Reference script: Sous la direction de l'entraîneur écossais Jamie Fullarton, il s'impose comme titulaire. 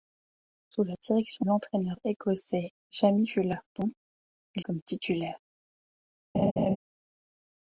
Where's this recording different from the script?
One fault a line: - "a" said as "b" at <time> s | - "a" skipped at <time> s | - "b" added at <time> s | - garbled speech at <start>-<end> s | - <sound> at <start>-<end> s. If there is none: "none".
- "de" skipped at 1.4 s
- "s'impose" skipped at 4.6 s
- laugh at 6.3-6.8 s